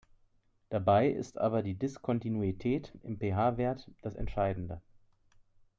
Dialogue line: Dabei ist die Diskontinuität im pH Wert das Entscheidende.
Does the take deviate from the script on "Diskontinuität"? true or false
false